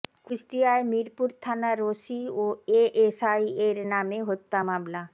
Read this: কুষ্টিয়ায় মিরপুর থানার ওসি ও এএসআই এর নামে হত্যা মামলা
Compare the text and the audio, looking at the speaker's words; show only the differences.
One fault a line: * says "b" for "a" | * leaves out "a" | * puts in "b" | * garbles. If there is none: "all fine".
all fine